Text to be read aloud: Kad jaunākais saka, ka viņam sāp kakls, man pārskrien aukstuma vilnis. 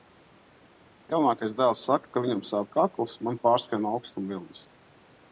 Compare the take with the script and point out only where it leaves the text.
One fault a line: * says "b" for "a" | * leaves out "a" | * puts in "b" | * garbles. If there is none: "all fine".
* puts in "dēls"